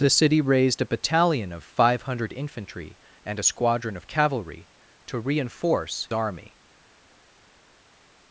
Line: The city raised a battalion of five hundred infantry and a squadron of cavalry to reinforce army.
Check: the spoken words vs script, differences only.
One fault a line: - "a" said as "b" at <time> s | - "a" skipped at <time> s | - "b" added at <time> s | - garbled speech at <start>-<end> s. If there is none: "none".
none